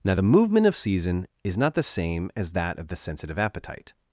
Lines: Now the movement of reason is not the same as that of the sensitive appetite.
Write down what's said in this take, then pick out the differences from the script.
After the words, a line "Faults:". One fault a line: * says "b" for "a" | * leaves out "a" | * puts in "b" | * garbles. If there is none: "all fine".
Now the movement of season is not the same as that of the sensitive appetite.
Faults:
* says "season" for "reason"